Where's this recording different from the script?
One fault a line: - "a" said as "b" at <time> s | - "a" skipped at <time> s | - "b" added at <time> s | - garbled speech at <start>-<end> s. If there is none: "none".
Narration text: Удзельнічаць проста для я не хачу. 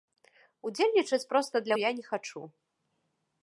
none